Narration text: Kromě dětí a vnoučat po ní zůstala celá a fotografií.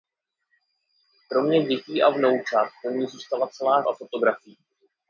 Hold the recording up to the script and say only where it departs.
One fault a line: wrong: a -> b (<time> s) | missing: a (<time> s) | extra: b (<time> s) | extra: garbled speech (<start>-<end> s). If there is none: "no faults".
no faults